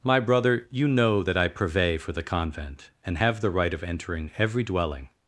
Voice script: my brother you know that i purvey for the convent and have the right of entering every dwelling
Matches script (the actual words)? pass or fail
pass